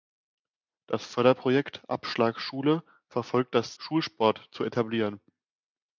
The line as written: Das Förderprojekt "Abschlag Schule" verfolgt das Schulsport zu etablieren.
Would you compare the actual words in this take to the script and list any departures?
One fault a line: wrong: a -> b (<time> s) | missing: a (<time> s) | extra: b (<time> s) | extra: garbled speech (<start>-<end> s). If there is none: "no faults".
no faults